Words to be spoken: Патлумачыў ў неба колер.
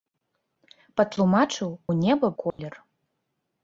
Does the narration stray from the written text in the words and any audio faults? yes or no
yes